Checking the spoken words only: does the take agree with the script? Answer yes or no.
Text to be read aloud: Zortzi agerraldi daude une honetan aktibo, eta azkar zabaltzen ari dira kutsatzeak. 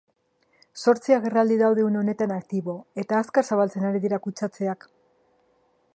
yes